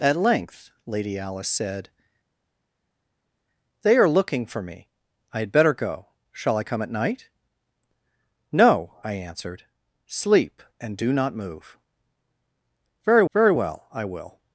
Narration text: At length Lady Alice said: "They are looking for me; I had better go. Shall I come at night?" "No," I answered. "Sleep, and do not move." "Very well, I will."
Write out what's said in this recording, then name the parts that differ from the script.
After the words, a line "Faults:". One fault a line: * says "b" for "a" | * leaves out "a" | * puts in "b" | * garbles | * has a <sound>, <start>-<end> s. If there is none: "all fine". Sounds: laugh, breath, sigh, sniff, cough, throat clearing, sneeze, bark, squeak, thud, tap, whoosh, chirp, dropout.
At length Lady Alice said: "They are looking for me; I had better go. Shall I come at night?" "No," I answered. "Sleep, and do not move." "Very very well, I will."
Faults:
* puts in "very"